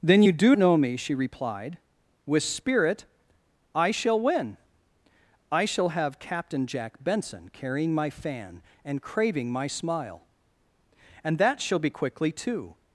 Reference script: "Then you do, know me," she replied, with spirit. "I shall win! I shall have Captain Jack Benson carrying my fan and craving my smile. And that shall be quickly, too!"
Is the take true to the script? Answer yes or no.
yes